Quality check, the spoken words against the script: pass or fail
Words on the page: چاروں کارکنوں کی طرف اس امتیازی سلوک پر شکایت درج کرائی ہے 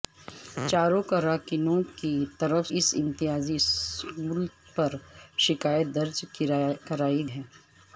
pass